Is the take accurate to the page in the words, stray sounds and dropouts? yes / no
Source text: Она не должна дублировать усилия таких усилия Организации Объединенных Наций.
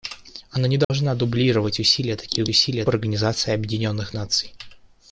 no